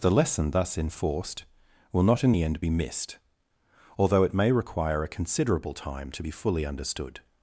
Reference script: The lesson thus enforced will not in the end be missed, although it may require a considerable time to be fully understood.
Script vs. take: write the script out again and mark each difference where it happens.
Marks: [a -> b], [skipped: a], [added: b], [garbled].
The lesson thus enforced will not in the end be missed, although it may require a considerable time to be fully understood.